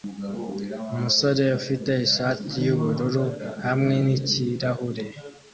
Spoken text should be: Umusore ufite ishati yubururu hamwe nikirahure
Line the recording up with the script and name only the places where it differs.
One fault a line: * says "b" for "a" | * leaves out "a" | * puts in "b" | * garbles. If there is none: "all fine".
all fine